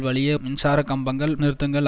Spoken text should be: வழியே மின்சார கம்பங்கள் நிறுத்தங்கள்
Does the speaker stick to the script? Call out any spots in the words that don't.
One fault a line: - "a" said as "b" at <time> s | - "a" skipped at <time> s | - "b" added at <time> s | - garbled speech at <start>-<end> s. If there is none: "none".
none